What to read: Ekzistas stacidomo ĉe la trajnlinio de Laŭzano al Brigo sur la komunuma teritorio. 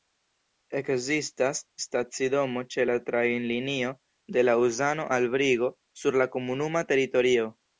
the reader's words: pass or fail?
pass